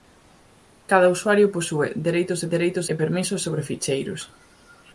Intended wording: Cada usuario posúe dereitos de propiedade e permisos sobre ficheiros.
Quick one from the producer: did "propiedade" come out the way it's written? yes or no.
no